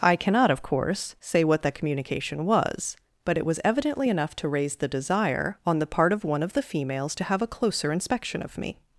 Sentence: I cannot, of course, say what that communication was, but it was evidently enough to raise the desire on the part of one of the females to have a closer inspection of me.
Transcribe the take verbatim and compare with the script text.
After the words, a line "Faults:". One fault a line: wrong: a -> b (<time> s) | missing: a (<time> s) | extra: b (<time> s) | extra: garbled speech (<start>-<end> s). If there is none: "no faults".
I cannot, of course, say what that communication was, but it was evidently enough to raise the desire on the part of one of the females to have a closer inspection of me.
Faults:
no faults